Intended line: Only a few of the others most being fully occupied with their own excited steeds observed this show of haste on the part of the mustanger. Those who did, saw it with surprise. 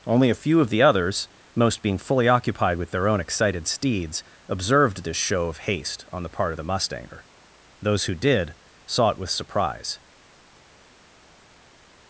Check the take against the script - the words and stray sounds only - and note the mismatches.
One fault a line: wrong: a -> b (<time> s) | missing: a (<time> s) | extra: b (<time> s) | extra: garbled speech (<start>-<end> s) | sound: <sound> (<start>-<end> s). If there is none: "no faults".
no faults